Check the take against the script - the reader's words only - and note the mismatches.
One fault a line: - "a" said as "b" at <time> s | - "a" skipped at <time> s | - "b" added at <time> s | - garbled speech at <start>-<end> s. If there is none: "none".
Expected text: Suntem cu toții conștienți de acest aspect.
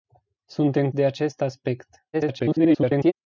- "cu toții conștienți" skipped at 0.9 s
- garbled speech at 2.1-3.1 s